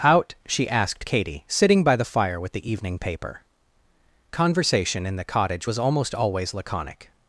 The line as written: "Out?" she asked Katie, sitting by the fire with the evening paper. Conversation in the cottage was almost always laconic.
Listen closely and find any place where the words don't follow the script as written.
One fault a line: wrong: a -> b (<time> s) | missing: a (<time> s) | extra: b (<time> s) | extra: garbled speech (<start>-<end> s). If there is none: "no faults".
no faults